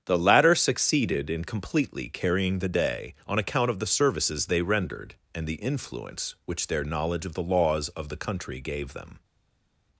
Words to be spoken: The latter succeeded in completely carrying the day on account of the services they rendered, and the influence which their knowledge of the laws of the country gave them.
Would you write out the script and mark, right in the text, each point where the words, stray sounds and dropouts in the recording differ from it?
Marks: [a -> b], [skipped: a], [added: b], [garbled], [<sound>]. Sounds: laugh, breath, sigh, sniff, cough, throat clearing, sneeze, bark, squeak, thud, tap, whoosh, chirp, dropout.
The latter succeeded in completely carrying the day on account of the services they rendered, and the influence which their knowledge of the laws of the country gave them.